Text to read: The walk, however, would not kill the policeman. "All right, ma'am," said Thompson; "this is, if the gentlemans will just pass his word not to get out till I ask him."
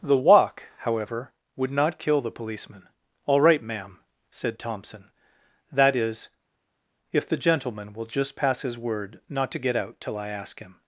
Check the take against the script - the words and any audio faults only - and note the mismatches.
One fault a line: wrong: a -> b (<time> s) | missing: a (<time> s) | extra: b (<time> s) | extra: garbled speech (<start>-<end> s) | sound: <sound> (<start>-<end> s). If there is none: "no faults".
wrong: this -> that (5.7 s)
wrong: gentlemans -> gentleman (7.4 s)